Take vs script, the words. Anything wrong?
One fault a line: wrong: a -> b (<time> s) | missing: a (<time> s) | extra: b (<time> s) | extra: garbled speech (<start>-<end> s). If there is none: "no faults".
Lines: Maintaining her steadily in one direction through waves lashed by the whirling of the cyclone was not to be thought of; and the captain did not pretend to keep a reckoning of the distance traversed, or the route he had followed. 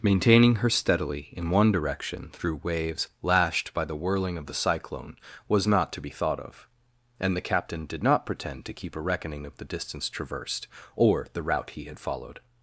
no faults